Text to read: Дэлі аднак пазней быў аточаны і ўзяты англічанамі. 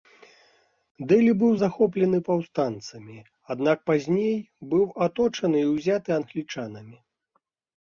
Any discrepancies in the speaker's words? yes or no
yes